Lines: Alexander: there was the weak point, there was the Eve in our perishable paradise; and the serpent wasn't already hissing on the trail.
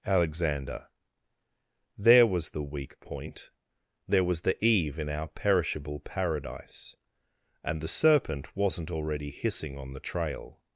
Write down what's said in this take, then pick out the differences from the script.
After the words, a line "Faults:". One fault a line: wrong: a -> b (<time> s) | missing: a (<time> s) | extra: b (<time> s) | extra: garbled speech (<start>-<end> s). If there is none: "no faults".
Alexander: there was the weak point, there was the Eve in our perishable paradise; and the serpent wasn't already hissing on the trail.
Faults:
no faults